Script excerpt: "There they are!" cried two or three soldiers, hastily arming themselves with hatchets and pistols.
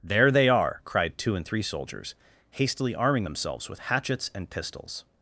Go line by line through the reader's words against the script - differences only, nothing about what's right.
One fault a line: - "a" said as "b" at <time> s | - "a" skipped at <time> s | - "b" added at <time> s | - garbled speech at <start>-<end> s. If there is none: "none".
- "or" said as "and" at 1.4 s